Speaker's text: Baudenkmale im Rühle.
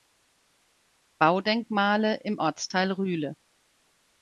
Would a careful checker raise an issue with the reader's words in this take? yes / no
yes